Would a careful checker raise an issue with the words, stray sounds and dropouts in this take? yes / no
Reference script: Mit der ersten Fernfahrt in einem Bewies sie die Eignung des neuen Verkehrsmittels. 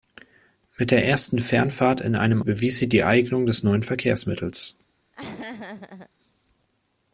yes